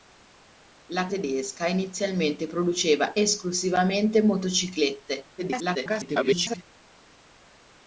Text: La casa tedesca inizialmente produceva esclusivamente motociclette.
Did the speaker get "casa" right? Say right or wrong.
wrong